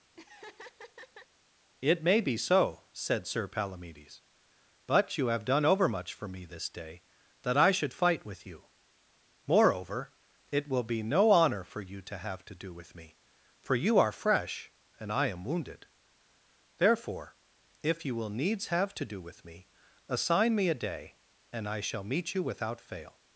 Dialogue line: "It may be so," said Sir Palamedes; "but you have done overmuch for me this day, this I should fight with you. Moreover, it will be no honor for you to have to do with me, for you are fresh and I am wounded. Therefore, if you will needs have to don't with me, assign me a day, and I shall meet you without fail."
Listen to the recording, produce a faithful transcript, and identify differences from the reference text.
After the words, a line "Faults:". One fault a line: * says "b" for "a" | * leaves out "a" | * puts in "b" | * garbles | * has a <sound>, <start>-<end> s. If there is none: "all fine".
"It may be so," said Sir Palamedes; "but you have done overmuch for me this day, that I should fight with you. Moreover, it will be no honor for you to have to do with me, for you are fresh and I am wounded. Therefore, if you will needs have to do with me, assign me a day, and I shall meet you without fail."
Faults:
* has a laugh, 0.1-1.3 s
* says "that" for "this"
* says "do" for "don't"